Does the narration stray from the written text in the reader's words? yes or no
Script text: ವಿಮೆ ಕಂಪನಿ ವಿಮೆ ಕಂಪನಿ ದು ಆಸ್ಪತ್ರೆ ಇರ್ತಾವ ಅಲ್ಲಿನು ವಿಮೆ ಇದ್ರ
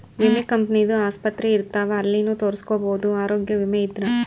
yes